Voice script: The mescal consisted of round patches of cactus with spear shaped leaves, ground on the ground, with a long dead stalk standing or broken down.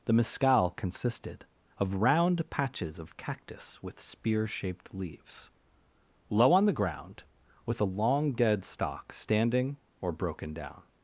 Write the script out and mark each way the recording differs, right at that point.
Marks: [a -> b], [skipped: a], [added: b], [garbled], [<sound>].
The mescal consisted of round patches of cactus with spear shaped leaves, [ground -> low] on the ground, with a long dead stalk standing or broken down.